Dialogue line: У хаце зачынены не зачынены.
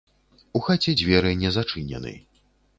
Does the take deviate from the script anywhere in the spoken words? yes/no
yes